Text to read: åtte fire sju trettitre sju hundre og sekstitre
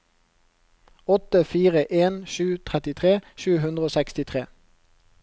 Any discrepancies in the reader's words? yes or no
yes